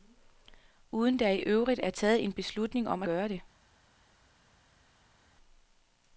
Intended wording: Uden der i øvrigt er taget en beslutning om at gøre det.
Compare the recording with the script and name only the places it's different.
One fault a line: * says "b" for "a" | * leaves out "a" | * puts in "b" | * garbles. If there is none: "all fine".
* leaves out "at"